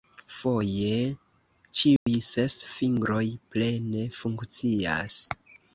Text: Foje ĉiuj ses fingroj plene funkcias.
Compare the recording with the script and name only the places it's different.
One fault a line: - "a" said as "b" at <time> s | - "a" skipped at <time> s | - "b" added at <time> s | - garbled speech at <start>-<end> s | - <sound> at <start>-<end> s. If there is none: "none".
- dropout at 2.0-2.1 s